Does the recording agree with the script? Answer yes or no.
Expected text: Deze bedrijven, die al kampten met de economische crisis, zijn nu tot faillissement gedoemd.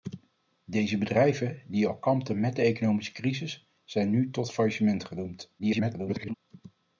no